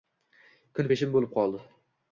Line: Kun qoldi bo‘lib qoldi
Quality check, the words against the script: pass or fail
fail